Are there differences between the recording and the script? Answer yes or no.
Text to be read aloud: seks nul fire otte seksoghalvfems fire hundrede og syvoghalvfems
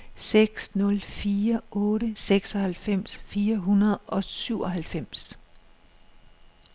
no